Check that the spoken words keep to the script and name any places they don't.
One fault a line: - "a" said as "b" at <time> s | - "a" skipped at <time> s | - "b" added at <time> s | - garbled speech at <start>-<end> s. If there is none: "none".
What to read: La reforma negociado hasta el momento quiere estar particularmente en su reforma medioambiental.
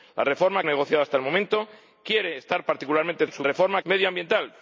none